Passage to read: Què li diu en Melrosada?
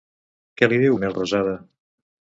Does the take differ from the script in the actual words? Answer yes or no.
no